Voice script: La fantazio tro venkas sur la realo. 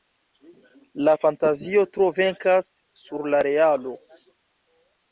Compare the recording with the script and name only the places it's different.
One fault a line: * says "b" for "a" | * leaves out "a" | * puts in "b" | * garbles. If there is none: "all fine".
all fine